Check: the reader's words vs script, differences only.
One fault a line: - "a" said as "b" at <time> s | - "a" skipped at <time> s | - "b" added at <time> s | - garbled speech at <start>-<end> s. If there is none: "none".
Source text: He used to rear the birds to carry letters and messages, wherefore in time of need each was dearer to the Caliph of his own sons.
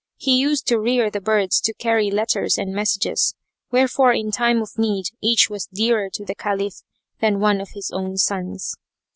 - "than one" added at 7.2 s